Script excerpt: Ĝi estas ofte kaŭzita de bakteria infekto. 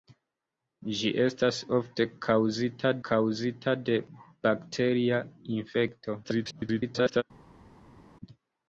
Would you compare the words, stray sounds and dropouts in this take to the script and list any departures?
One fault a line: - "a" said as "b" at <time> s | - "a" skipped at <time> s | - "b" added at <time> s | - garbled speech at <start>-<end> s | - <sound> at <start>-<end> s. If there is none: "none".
- "kaŭzita" added at 3.1 s
- garbled speech at 6.2-7.2 s